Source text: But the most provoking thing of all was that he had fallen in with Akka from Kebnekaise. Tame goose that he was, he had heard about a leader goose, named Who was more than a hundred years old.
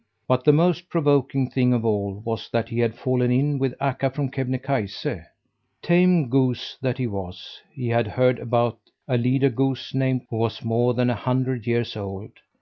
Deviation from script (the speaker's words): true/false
false